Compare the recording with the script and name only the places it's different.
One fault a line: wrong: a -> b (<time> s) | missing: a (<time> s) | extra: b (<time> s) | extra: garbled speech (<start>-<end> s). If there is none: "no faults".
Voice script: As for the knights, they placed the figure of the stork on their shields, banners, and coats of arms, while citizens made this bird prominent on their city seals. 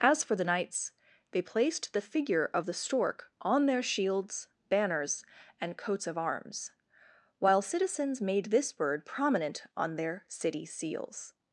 no faults